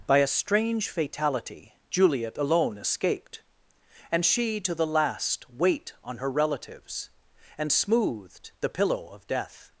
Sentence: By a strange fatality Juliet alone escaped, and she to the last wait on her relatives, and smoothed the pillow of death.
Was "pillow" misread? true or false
false